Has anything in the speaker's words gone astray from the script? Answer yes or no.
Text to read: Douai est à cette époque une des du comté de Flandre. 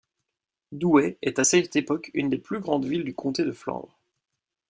yes